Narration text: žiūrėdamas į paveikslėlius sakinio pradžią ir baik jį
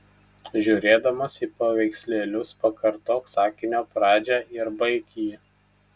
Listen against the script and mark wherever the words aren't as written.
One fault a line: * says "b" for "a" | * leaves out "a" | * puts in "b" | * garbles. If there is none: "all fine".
* puts in "pakartok"